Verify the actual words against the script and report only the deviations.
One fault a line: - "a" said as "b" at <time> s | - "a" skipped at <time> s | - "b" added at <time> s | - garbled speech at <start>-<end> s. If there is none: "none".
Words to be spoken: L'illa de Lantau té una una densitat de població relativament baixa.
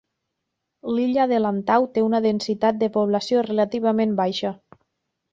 - "una" skipped at 2.2 s